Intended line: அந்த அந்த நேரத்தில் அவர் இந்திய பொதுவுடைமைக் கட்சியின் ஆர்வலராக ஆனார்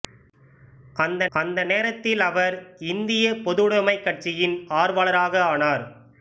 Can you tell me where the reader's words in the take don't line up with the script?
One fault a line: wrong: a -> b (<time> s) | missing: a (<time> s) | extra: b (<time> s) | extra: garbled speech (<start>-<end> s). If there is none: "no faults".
no faults